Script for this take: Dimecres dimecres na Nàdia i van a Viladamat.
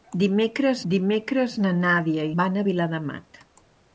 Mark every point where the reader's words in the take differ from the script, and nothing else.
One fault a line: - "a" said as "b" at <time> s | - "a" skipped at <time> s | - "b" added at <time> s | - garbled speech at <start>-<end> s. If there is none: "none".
none